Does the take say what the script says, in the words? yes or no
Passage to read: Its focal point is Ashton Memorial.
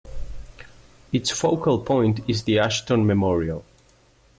no